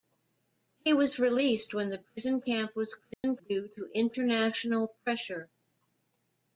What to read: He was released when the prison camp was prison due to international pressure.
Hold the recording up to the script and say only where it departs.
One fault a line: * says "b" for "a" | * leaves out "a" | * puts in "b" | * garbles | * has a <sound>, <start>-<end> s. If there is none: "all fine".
* has a dropout, 3.1-3.2 s